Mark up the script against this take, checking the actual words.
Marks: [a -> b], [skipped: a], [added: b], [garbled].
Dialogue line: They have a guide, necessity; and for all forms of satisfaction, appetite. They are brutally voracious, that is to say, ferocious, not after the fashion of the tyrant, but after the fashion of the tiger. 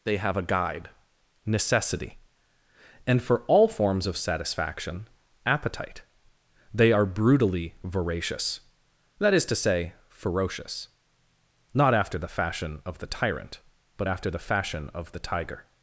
They have a guide, necessity; and for all forms of satisfaction, appetite. They are brutally voracious, that is to say, ferocious, not after the fashion of the tyrant, but after the fashion of the tiger.